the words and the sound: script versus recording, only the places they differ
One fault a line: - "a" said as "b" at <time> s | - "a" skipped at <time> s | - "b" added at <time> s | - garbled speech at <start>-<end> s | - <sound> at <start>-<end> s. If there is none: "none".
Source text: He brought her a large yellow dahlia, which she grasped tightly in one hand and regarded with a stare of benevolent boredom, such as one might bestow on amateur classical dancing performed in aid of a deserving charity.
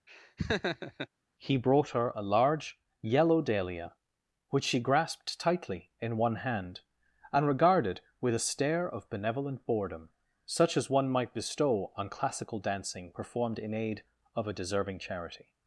- laugh at 0.1-1.1 s
- "amateur" skipped at 12.1 s